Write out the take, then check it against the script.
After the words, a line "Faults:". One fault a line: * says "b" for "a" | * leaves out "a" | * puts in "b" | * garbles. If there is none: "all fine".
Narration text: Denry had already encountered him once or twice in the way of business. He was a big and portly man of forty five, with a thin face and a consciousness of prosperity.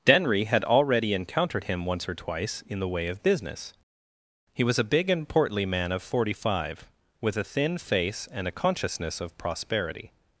Denry had already encountered him once or twice in the way of business. He was a big and portly man of forty five, with a thin face and a consciousness of prosperity.
Faults:
all fine